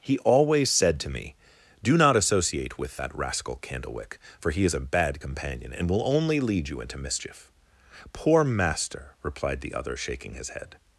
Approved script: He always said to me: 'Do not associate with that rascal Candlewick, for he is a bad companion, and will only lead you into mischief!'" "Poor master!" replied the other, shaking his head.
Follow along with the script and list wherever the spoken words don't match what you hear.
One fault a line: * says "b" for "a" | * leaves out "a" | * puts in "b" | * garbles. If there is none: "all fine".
all fine